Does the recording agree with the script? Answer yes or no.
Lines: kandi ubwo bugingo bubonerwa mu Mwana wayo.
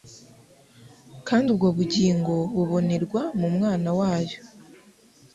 yes